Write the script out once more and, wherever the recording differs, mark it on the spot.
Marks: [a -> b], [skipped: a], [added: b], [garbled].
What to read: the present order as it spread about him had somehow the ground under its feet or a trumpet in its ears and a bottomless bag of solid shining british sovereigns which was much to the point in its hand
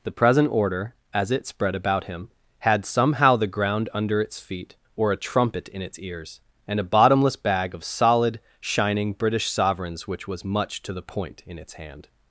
the present order as it spread about him had somehow the ground under its feet or a trumpet in its ears and a bottomless bag of solid shining british sovereigns which was much to the point in its hand